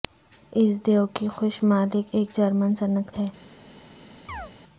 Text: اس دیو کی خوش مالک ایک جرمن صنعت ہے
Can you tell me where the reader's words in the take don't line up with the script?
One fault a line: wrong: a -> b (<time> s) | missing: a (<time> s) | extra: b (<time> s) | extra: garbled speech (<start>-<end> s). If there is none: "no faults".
no faults